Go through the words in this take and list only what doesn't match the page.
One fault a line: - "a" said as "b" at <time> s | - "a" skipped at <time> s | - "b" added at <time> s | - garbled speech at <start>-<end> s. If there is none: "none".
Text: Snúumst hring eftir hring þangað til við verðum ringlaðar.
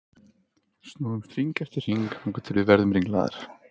none